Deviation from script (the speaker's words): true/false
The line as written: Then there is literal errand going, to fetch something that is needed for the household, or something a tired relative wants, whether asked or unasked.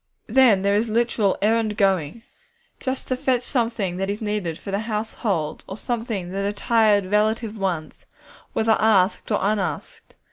true